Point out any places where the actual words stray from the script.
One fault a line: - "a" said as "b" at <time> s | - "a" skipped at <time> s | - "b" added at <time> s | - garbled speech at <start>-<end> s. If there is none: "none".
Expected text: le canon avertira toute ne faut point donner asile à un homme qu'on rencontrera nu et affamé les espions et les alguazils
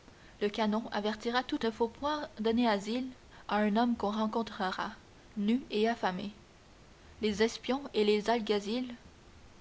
none